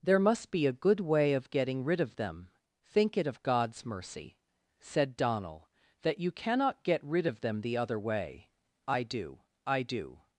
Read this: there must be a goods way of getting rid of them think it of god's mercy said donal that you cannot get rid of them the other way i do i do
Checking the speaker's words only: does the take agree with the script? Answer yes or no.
no